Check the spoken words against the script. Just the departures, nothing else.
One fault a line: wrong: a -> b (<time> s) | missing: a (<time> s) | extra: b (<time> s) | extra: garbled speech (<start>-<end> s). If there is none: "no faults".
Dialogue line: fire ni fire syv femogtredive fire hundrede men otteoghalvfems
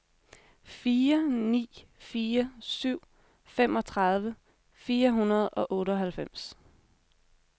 wrong: men -> og (5.5 s)